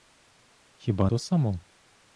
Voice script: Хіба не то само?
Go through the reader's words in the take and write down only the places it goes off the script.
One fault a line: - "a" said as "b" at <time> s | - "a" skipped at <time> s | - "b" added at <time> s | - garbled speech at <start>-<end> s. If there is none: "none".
- "не" skipped at 1.1 s